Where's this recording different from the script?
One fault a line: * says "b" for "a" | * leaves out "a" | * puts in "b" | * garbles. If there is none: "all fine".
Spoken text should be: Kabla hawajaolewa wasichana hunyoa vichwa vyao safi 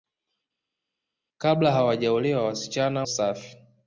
* leaves out "hunyoa vichwa vyao"